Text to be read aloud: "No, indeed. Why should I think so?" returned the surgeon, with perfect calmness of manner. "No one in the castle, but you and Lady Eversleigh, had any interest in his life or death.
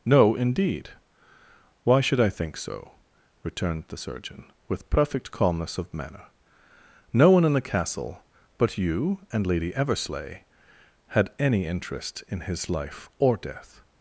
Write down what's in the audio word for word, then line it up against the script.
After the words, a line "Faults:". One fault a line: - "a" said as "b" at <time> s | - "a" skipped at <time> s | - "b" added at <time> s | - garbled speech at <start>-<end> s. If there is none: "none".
"No, indeed. Why should I think so?" returned the surgeon, with perfect calmness of manner. "No one in the castle, but you and Lady Eversleigh, had any interest in his life or death.
Faults:
none